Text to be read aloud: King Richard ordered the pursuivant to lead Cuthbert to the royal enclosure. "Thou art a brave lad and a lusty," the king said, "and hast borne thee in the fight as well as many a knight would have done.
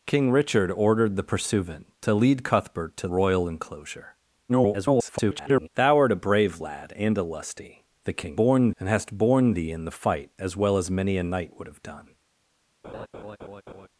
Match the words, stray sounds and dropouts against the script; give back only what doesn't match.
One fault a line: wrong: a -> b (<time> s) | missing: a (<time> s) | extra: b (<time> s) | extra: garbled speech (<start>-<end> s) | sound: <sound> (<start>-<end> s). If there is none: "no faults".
missing: the (3.1 s)
extra: garbled speech (4.5-5.7 s)
wrong: said -> borne (8.4 s)
sound: laugh (12.8-13.9 s)